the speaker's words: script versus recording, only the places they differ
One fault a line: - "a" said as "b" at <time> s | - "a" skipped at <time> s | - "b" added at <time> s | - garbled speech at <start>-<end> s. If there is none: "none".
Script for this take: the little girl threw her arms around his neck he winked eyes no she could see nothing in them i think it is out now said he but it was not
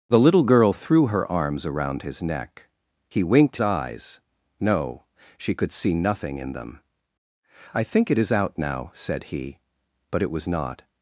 none